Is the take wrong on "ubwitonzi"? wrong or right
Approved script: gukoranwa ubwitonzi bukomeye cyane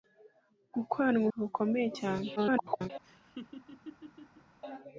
wrong